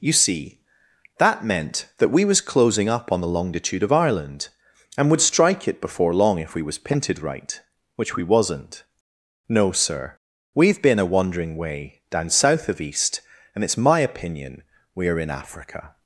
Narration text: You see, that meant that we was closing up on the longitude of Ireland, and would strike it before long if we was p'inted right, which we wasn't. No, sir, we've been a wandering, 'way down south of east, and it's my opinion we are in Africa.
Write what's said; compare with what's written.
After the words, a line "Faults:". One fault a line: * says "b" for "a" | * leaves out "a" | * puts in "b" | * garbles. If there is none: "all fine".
You see, that meant that we was closing up on the longitude of Ireland, and would strike it before long if we was p'inted right, which we wasn't. No, sir, we've been a wandering, 'way down south of east, and it's my opinion we are in Africa.
Faults:
all fine